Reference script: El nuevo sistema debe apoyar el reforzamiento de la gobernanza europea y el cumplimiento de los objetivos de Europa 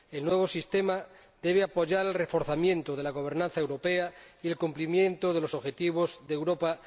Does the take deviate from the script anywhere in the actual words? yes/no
no